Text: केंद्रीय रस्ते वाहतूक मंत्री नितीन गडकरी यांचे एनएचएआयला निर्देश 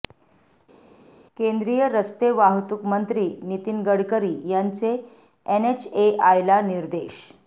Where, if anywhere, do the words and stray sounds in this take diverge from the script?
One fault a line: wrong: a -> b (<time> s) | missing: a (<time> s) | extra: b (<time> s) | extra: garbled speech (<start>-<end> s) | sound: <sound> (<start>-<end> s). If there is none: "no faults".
no faults